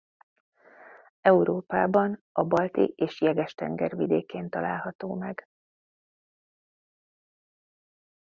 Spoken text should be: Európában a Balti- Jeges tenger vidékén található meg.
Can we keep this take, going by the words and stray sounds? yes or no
no